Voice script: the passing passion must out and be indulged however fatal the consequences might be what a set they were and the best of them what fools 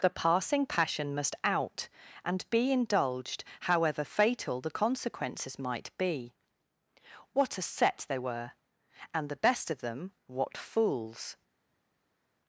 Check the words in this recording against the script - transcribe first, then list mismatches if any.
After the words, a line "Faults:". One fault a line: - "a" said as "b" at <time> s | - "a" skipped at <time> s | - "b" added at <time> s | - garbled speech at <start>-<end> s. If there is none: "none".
the passing passion must out and be indulged however fatal the consequences might be what a set they were and the best of them what fools
Faults:
none